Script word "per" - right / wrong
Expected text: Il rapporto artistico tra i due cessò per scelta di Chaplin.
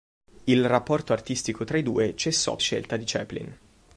wrong